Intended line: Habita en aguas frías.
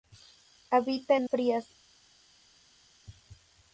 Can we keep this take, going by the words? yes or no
no